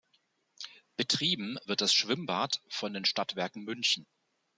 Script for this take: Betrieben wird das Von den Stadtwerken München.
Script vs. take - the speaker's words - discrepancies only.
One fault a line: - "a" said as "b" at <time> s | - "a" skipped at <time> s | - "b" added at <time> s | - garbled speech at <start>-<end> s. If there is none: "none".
- "Schwimmbad" added at 1.9 s